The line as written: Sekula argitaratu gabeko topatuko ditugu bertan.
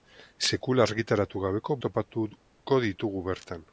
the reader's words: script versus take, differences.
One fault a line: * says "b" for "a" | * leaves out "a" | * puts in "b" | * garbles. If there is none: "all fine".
all fine